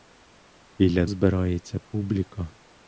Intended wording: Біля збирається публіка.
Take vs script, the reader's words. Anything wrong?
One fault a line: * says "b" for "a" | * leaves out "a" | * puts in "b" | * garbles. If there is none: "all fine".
all fine